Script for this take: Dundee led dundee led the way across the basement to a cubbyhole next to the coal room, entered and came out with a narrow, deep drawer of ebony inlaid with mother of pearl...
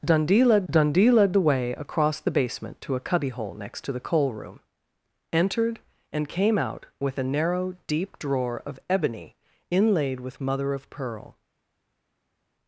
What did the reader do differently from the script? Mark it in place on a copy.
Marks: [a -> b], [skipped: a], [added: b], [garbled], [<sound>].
Dundee led dundee led the way across the basement to a cubbyhole next to the coal room, entered and came out with a narrow, deep drawer of ebony inlaid with mother of pearl...